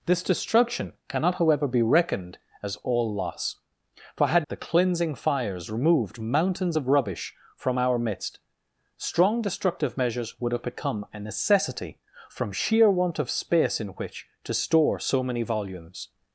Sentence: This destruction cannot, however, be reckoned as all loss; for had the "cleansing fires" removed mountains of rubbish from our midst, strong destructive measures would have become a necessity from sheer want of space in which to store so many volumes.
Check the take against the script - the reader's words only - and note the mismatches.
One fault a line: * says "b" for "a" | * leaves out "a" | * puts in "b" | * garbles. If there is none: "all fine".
all fine